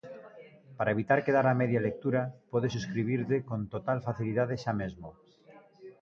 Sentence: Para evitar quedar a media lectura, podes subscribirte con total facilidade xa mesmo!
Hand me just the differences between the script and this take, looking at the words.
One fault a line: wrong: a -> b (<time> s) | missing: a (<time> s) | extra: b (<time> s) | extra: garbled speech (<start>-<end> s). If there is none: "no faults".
no faults